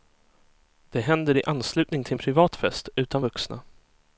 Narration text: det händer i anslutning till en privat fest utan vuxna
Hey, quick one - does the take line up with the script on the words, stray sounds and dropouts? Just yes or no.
yes